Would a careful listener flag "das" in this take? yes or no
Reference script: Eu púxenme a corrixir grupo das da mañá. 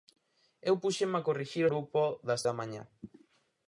no